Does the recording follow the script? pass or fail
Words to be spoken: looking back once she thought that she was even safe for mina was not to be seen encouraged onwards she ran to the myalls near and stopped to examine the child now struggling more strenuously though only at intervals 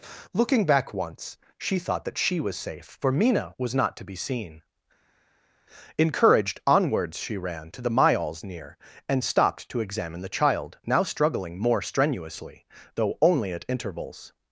fail